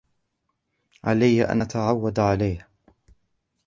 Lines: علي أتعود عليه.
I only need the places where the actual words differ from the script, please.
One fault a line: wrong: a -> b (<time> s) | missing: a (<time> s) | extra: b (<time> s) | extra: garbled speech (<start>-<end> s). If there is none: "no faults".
extra: أن (1.4 s)